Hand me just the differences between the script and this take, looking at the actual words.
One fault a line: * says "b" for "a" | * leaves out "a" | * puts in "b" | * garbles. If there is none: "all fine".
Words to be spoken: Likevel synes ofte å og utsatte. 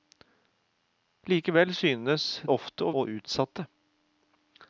all fine